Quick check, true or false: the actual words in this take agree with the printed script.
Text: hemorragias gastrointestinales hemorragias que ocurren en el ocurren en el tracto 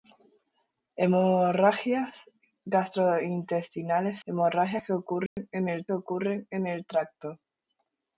true